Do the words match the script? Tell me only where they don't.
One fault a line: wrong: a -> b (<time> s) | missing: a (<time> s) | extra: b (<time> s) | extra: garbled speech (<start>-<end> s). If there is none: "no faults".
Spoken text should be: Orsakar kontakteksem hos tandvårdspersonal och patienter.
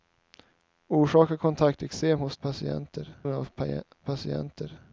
wrong: tandvårdspersonal -> patienter (2.4 s)